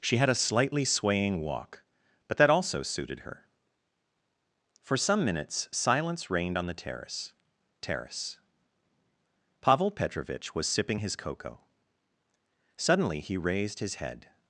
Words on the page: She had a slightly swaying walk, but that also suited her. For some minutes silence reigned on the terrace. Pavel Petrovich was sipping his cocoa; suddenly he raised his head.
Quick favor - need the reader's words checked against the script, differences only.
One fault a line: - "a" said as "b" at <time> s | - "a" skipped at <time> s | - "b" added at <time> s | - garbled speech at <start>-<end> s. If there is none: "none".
- "terrace" added at 7.8 s